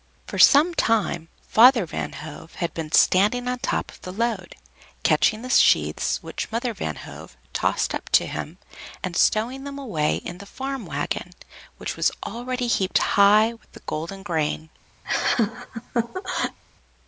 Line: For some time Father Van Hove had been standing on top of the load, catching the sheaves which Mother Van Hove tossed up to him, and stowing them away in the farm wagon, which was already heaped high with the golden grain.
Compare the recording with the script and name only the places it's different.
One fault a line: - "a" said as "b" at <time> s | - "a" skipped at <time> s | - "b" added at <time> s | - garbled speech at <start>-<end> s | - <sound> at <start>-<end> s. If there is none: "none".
- laugh at 15.0-16.6 s